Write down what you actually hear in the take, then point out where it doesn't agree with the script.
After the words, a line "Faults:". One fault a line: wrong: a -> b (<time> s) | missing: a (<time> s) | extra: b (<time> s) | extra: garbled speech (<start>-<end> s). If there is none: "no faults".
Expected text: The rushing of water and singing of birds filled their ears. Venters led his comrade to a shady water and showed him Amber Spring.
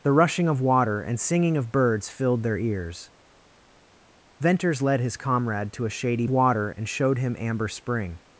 The rushing of water and singing of birds filled their ears. Venters led his comrade to a shady water and showed him Amber Spring.
Faults:
no faults